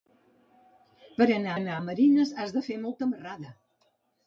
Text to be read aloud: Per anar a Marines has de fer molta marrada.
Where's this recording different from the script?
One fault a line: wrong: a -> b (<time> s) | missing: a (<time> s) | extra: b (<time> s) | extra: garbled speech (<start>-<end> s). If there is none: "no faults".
extra: anar (1.6 s)